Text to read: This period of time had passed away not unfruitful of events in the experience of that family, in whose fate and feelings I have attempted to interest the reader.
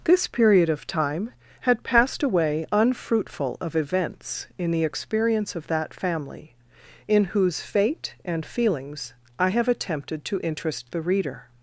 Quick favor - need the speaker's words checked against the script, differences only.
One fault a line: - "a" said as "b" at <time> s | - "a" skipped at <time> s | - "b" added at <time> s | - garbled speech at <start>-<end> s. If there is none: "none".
- "not" skipped at 2.7 s